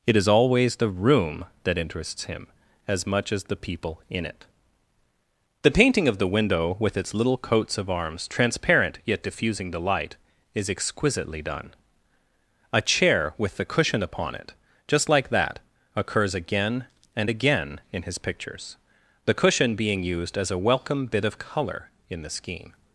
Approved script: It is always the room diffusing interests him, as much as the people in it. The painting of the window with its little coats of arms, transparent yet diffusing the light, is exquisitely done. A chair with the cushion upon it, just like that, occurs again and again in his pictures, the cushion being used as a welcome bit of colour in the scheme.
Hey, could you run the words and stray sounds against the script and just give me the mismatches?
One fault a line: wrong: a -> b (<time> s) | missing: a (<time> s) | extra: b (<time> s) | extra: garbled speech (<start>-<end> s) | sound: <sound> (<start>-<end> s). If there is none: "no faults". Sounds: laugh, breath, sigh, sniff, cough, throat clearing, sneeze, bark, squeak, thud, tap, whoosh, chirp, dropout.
wrong: diffusing -> that (1.6 s)